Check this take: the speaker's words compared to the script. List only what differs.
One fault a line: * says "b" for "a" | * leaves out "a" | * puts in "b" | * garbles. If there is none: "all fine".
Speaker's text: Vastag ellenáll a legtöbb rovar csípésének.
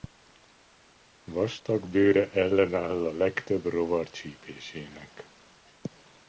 * puts in "bőre"